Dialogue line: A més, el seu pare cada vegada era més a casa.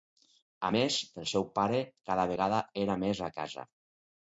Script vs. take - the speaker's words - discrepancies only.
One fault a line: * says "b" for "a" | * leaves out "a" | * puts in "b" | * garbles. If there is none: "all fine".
all fine